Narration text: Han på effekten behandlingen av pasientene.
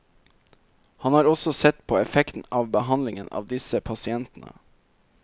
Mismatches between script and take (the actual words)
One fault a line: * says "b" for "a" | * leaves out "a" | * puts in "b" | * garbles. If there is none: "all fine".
* puts in "har også sett"
* puts in "av"
* puts in "disse"